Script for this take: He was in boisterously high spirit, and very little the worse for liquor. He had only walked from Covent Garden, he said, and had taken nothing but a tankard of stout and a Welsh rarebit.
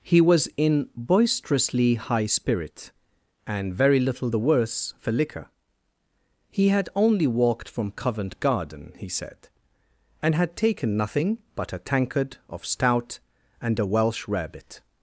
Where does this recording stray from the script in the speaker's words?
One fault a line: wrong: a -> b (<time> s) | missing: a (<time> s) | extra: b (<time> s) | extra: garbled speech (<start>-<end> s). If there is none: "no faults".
no faults